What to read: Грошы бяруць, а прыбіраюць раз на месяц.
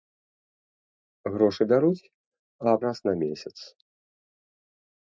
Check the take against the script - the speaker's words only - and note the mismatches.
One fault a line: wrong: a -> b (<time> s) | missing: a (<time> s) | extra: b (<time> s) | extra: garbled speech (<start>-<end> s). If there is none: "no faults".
missing: прыбіраюць (2.8 s)